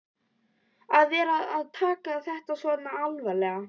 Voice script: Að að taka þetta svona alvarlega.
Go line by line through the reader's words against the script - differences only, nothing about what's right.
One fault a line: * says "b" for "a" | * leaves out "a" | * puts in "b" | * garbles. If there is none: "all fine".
* puts in "vera"